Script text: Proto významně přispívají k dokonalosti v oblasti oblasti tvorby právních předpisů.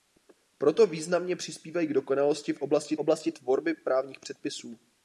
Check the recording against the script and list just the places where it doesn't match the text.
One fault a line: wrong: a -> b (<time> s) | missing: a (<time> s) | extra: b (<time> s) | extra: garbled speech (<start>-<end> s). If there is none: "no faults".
no faults